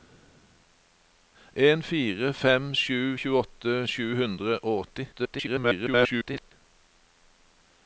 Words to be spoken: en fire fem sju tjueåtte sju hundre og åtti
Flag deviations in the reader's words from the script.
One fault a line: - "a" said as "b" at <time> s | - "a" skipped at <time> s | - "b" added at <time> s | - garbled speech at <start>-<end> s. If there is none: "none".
- garbled speech at 5.1-6.5 s